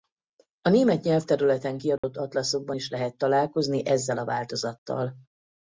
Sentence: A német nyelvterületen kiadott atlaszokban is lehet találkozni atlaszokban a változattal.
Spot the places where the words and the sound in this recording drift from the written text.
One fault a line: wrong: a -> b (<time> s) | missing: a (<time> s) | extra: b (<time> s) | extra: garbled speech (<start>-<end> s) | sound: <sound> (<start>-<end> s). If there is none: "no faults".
sound: dropout (2.0-2.0 s)
wrong: atlaszokban -> ezzel (3.9 s)